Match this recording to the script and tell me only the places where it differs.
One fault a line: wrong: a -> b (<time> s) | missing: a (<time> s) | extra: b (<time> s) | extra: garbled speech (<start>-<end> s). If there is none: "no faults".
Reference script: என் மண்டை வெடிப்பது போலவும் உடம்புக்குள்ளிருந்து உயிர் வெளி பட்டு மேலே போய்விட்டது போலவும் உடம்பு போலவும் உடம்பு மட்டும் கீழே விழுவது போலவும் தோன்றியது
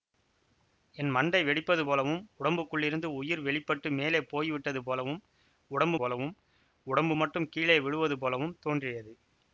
no faults